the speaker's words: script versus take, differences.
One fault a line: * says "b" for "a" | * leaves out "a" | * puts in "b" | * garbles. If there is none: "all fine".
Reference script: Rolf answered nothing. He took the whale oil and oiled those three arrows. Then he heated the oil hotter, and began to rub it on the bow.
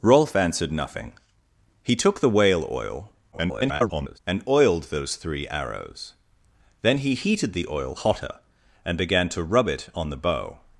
* garbles